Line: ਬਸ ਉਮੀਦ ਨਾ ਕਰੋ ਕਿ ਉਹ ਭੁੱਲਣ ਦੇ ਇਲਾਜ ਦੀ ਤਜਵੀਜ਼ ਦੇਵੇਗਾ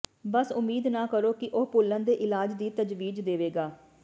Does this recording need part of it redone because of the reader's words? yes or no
no